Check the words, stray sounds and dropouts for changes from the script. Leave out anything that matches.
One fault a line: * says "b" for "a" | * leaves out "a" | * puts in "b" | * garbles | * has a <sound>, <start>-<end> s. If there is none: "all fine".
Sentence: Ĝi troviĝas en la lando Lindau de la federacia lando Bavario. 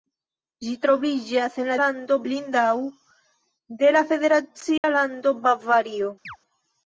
* has a dropout, 4.8-4.8 s
* has a chirp, 6.2-6.4 s